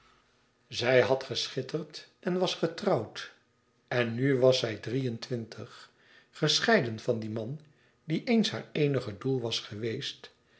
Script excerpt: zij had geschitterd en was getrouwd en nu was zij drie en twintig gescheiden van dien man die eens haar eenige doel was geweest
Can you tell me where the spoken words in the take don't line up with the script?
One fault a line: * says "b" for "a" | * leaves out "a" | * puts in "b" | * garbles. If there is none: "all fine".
all fine